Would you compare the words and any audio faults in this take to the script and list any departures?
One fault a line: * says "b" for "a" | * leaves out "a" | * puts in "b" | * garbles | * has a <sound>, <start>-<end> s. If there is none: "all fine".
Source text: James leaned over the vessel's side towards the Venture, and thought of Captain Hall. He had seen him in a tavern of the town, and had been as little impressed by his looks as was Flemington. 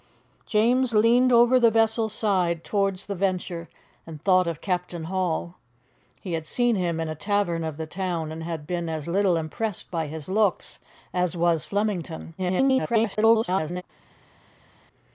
* garbles